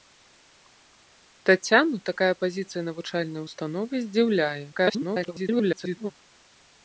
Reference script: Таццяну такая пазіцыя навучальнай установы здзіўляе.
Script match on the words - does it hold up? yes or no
no